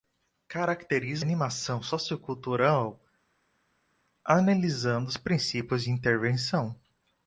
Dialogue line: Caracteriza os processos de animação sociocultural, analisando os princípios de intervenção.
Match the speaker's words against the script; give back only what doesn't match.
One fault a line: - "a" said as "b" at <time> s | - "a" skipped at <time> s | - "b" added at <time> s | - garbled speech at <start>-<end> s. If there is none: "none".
- "os processos de" skipped at 1.2 s